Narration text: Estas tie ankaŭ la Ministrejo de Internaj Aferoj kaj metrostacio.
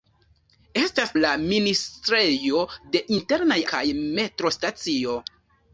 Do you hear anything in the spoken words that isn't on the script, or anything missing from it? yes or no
yes